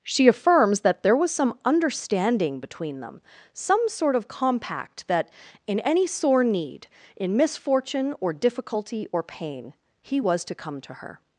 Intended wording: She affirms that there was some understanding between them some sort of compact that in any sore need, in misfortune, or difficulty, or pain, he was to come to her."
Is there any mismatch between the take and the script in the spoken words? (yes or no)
no